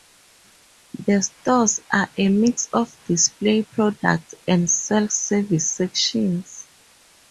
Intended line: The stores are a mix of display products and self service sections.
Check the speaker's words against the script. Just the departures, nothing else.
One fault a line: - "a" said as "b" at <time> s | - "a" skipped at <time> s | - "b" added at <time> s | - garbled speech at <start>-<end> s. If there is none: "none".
none